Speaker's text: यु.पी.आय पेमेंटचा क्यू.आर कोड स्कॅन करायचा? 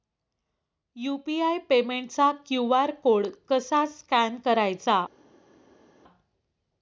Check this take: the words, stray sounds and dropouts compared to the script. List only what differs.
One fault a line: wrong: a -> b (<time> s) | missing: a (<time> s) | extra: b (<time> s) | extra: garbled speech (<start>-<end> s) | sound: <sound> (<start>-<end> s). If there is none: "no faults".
extra: कसा (3.5 s)